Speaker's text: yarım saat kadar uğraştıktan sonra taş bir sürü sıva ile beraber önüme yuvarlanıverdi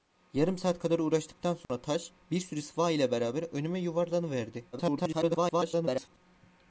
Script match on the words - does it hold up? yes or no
no